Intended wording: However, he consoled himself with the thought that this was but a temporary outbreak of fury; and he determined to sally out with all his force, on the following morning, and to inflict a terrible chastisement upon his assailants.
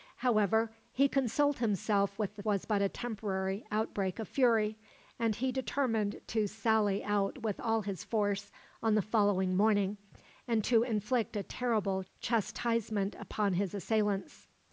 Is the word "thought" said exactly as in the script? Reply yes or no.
no